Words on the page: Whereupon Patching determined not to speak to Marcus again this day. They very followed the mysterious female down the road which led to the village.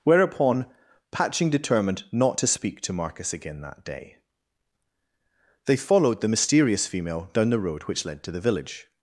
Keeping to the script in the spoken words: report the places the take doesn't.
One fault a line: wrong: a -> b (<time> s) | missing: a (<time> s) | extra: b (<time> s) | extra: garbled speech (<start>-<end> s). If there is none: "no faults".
wrong: this -> that (3.6 s)
missing: very (5.7 s)